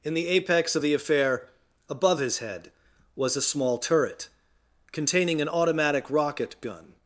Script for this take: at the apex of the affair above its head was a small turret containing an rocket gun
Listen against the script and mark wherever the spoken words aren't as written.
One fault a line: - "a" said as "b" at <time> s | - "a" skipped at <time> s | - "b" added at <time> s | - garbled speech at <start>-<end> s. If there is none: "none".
- "at" said as "in" at 0.0 s
- "its" said as "his" at 2.2 s
- "automatic" added at 5.5 s